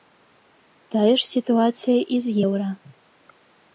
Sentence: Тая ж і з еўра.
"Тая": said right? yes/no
yes